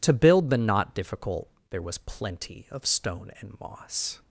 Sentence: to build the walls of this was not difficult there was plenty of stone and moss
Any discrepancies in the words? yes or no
yes